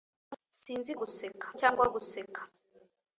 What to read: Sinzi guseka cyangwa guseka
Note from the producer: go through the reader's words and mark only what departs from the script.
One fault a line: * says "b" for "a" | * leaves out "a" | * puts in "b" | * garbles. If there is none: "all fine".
all fine